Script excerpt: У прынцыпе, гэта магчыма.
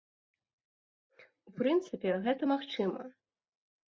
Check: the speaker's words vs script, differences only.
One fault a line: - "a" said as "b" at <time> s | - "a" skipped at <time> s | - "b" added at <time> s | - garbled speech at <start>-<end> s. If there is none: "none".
none